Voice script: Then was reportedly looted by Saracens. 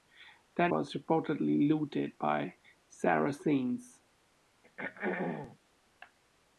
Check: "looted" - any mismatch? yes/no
no